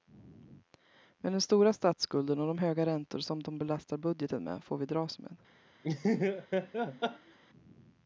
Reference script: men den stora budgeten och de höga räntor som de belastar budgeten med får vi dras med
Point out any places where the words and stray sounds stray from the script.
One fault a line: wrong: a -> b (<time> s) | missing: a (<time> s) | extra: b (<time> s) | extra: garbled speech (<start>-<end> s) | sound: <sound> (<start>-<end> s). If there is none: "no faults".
wrong: budgeten -> statsskulden (1.7 s)
sound: laugh (5.8-7.4 s)